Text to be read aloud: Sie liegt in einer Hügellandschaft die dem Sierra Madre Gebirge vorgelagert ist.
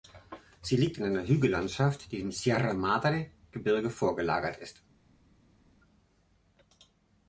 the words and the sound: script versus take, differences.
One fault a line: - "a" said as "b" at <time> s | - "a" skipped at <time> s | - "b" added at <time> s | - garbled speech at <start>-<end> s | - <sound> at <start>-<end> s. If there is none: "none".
none